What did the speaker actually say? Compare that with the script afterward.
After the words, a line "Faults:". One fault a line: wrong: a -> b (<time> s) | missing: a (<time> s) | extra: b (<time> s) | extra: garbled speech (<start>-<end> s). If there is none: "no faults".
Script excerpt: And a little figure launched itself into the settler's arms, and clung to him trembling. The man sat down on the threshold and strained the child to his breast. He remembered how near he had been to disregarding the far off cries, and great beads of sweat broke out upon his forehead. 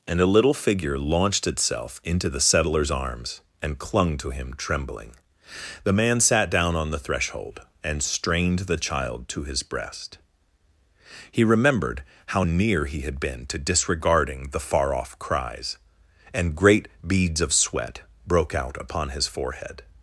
And a little figure launched itself into the settler's arms, and clung to him trembling. The man sat down on the threshold and strained the child to his breast. He remembered how near he had been to disregarding the far off cries, and great beads of sweat broke out upon his forehead.
Faults:
no faults